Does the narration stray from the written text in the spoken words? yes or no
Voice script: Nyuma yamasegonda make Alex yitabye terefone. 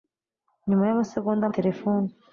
yes